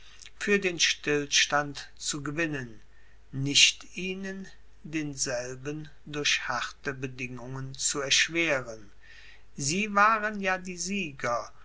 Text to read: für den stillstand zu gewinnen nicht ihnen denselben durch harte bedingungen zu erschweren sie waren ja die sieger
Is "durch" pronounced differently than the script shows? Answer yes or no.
no